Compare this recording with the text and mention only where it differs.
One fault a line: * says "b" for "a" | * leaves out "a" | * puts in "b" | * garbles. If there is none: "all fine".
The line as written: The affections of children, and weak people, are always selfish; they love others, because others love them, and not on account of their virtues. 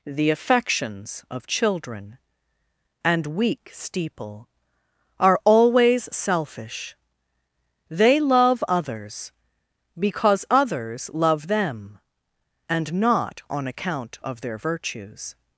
* says "steeple" for "people"